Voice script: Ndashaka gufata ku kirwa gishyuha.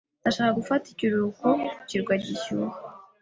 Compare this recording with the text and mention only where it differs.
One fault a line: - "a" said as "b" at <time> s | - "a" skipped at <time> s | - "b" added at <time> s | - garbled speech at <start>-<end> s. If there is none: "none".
- "ikiruhuko" added at 0.9 s